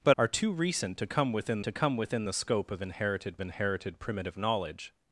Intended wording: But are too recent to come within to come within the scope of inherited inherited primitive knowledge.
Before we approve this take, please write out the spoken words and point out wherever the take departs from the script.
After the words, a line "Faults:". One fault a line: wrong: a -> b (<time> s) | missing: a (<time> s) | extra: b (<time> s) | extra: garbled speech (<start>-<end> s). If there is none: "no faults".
But are too recent to come within to come within the scope of inherited inherited primitive knowledge.
Faults:
no faults